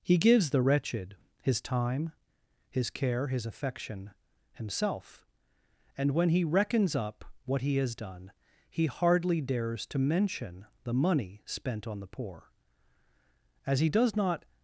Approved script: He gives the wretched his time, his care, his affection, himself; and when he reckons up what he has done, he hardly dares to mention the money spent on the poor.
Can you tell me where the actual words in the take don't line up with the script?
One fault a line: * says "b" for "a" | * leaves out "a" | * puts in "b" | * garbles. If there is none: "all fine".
* puts in "As he does not"